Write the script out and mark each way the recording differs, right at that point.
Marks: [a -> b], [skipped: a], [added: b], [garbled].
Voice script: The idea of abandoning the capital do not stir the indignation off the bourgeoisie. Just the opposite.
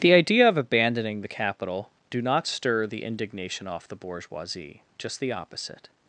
The idea of abandoning the capital do not stir the indignation off the bourgeoisie. Just the opposite.